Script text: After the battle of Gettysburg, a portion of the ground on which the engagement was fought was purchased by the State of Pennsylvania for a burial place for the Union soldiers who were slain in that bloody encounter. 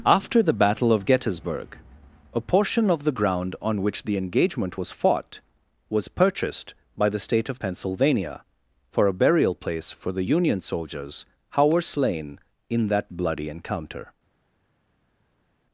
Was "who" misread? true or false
true